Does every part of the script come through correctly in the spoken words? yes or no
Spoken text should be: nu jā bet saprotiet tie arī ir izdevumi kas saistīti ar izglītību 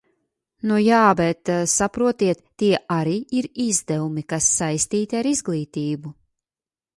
yes